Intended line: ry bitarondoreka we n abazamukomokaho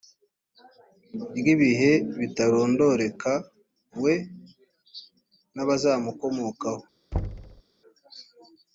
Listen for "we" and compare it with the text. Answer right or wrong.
right